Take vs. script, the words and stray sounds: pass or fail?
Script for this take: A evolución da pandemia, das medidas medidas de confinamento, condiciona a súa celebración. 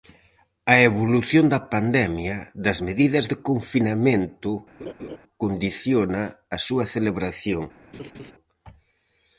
fail